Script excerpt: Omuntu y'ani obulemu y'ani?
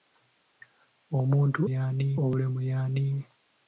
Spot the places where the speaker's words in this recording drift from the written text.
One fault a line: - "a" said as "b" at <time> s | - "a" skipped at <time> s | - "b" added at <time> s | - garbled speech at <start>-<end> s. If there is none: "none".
none